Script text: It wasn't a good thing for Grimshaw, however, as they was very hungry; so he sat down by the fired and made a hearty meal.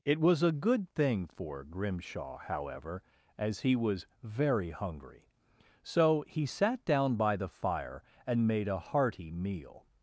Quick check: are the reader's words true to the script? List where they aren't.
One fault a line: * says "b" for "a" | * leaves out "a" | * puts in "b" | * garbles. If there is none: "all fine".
* says "was" for "wasn't"
* says "he" for "they"
* says "fire" for "fired"